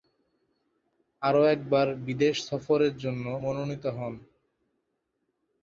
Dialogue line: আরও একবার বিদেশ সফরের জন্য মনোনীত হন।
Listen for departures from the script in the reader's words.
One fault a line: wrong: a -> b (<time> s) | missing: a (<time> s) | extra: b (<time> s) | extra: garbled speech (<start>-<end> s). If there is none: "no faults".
no faults